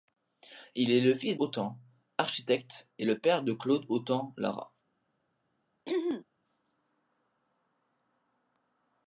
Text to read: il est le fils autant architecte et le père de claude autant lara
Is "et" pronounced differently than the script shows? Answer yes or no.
no